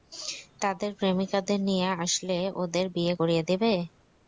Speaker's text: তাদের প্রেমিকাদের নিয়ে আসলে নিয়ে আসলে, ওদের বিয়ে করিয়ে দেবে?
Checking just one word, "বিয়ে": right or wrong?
right